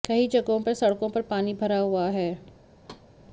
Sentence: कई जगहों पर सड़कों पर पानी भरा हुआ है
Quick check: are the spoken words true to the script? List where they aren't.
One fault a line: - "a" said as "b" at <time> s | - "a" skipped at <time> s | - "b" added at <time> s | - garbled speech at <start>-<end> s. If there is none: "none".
none